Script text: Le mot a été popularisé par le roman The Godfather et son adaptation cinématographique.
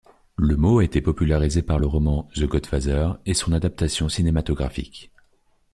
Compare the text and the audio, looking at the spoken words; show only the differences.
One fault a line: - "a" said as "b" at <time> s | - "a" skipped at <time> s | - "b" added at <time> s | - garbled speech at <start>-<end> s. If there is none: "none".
none